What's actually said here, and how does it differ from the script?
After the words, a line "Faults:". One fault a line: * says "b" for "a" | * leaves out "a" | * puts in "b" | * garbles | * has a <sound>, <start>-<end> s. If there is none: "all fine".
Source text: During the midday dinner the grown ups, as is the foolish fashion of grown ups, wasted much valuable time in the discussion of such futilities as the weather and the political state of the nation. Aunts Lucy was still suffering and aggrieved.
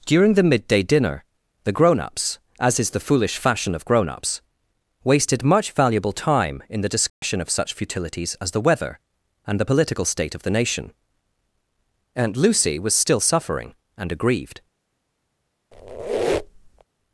During the midday dinner the grown ups, as is the foolish fashion of grown ups, wasted much valuable time in the discussion of such futilities as the weather and the political state of the nation. Aunt Lucy was still suffering and aggrieved.
Faults:
* has a dropout, 7.1-7.2 s
* says "Aunt" for "Aunts"
* has a squeak, 15.7-16.8 s